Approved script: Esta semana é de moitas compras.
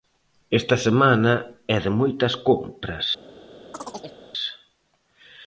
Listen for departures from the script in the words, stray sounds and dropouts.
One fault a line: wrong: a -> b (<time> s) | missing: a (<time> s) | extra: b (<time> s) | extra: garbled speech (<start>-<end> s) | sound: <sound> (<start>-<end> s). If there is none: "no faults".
sound: chirp (3.7-4.2 s)